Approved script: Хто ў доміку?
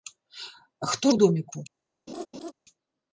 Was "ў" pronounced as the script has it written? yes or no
yes